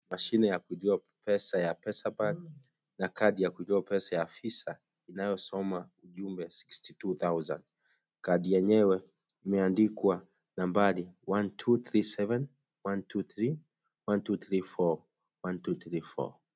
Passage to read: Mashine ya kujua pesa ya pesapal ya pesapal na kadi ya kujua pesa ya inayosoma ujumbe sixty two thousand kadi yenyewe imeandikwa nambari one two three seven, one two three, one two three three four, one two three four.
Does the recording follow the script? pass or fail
fail